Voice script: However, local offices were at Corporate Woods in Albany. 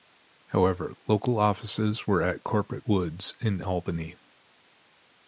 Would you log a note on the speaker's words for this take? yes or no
no